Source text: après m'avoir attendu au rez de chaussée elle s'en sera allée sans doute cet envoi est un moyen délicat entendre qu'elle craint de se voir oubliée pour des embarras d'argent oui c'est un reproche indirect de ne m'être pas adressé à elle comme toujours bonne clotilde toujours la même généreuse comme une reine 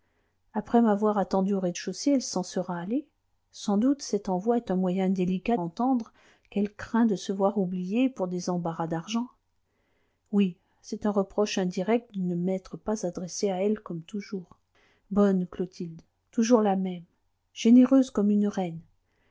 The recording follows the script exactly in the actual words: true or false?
true